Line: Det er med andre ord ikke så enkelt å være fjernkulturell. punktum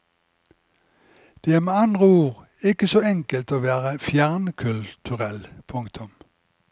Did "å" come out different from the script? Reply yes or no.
no